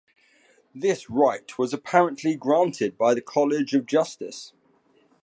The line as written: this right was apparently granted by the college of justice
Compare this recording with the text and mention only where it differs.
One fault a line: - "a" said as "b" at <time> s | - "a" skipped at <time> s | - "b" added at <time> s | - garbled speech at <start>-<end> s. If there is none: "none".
none